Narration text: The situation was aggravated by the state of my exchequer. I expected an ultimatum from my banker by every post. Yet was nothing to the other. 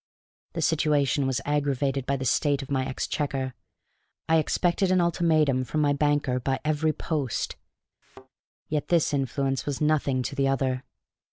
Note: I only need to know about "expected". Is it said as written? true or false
true